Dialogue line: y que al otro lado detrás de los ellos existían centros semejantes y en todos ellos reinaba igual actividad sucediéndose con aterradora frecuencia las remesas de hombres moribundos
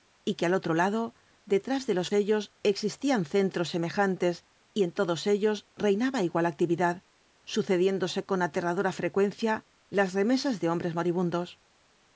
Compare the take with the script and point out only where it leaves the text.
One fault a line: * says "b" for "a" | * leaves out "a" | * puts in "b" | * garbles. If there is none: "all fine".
all fine